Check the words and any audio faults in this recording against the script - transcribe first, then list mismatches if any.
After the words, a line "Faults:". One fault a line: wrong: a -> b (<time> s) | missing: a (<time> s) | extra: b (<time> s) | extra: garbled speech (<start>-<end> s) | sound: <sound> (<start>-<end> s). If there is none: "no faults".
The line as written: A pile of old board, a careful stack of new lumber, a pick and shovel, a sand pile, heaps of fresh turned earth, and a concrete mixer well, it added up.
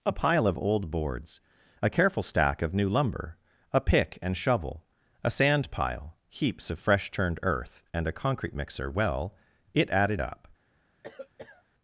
A pile of old boards, a careful stack of new lumber, a pick and shovel, a sand pile, heaps of fresh turned earth, and a concrete mixer well, it added up.
Faults:
wrong: board -> boards (0.9 s)
sound: cough (11.0-11.6 s)